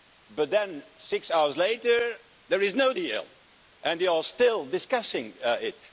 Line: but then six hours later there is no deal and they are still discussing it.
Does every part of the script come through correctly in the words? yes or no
yes